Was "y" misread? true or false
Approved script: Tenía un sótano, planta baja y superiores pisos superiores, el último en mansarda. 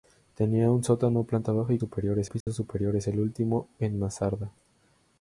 false